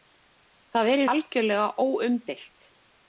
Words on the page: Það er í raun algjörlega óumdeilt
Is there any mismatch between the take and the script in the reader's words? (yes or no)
yes